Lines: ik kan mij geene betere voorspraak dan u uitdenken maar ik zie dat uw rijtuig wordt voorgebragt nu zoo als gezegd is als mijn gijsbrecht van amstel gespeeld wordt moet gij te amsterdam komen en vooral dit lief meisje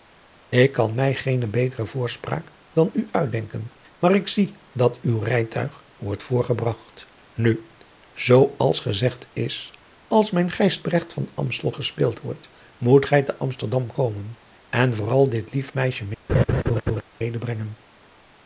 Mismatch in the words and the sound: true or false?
true